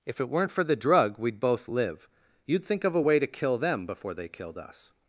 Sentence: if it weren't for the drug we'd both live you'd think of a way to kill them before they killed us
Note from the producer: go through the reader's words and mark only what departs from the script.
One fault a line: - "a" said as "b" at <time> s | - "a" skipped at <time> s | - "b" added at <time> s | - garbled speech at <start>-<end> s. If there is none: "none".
none